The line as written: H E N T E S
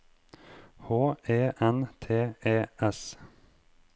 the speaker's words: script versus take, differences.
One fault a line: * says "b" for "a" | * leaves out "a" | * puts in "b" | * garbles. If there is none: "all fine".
all fine